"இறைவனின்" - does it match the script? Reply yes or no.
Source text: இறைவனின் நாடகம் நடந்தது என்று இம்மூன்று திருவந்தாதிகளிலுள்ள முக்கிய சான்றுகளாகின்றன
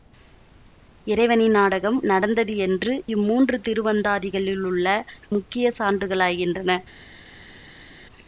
yes